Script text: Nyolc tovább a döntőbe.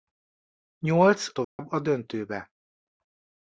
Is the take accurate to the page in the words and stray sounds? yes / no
no